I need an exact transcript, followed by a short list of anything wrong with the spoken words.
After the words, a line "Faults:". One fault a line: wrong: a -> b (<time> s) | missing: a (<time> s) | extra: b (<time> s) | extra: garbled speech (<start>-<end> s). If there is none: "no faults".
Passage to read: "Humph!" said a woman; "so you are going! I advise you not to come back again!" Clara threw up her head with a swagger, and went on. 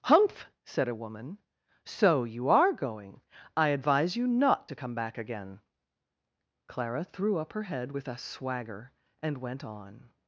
"Humph!" said a woman; "so you are going! I advise you not to come back again!" Clara threw up her head with a swagger, and went on.
Faults:
no faults